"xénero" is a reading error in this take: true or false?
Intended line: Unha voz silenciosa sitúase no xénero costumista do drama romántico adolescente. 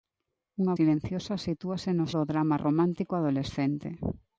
true